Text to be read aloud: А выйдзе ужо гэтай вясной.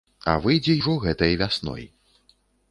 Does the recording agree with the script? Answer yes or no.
yes